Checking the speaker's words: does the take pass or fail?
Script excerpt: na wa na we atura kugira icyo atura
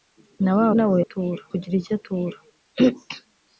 pass